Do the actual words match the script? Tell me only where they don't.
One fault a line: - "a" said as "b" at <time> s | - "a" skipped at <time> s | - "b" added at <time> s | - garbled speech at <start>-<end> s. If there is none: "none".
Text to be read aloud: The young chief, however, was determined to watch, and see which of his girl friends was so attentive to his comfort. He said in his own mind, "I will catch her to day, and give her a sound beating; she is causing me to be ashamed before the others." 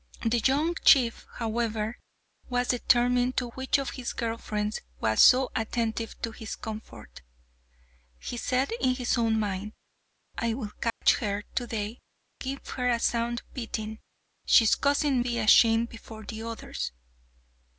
- "watch and see" skipped at 3.5 s
- "and" skipped at 12.0 s
- "me to" skipped at 15.2 s